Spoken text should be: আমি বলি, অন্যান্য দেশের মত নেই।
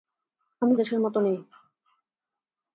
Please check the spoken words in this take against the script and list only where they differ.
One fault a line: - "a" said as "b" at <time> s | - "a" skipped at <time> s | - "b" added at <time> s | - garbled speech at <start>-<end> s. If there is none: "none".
- "বলি অন্যান্য" skipped at 0.7 s